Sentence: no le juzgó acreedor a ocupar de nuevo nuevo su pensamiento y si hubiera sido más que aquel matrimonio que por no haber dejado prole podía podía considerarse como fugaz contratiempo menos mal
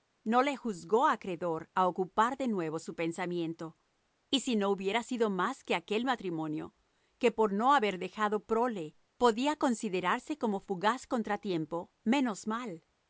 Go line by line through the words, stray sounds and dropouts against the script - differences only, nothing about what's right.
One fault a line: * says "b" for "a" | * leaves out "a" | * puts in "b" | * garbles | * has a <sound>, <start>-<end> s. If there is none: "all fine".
* leaves out "nuevo"
* puts in "no"
* leaves out "podía"